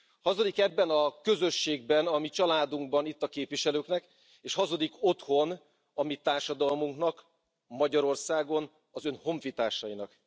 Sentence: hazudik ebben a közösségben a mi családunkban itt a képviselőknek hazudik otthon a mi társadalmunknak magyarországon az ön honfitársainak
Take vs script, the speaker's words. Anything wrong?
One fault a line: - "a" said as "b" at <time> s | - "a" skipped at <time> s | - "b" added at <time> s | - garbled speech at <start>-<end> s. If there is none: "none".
- "és" added at 4.4 s